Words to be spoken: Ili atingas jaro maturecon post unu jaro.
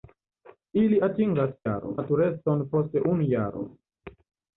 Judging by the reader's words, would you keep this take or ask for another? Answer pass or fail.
pass